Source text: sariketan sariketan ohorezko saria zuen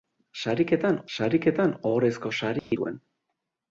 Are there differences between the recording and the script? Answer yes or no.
no